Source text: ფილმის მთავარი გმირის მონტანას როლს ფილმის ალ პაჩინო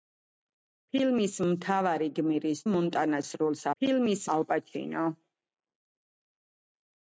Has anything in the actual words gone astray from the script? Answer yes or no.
no